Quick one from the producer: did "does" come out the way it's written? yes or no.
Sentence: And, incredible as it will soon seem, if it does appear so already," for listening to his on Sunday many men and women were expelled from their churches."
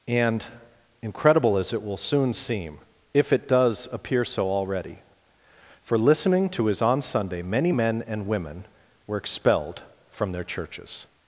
yes